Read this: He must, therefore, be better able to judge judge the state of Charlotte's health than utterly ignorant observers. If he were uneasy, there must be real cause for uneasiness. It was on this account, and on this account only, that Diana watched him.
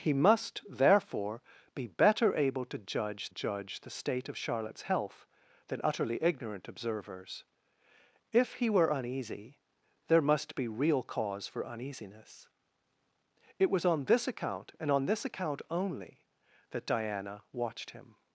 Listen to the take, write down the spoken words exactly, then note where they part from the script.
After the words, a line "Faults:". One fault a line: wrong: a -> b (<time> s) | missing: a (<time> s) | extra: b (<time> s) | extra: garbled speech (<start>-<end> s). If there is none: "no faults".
He must, therefore, be better able to judge judge the state of Charlotte's health than utterly ignorant observers. If he were uneasy, there must be real cause for uneasiness. It was on this account, and on this account only, that Diana watched him.
Faults:
no faults